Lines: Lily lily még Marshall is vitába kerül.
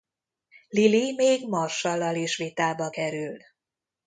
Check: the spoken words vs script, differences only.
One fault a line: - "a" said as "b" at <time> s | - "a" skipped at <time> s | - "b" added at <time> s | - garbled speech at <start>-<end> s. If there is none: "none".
- "lily" skipped at 1.1 s
- "lal" added at 2.0 s